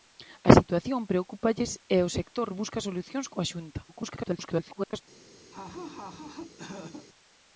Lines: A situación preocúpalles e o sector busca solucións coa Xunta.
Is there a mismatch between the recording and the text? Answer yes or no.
yes